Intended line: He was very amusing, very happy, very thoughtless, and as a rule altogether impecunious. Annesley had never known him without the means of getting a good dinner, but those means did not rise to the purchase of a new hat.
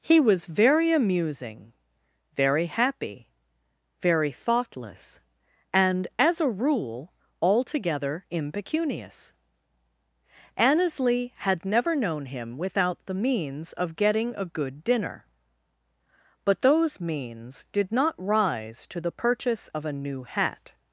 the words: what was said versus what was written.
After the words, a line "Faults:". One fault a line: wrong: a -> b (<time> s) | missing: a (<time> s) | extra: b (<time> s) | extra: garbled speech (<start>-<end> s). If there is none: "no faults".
He was very amusing, very happy, very thoughtless, and as a rule altogether impecunious. Annesley had never known him without the means of getting a good dinner, but those means did not rise to the purchase of a new hat.
Faults:
no faults